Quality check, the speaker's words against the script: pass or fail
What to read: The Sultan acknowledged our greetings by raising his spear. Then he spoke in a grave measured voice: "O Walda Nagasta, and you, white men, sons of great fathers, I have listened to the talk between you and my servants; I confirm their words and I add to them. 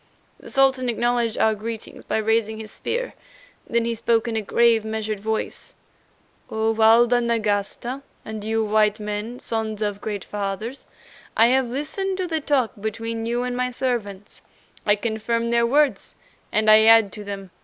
pass